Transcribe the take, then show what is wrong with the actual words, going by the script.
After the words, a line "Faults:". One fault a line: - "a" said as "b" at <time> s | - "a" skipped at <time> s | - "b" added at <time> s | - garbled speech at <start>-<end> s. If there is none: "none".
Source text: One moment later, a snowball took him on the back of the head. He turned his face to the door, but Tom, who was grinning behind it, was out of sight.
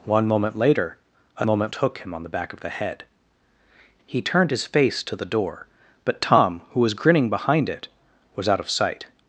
One moment later, a moment took him on the back of the head. He turned his face to the door, but Tom, who was grinning behind it, was out of sight.
Faults:
- "snowball" said as "moment" at 1.4 s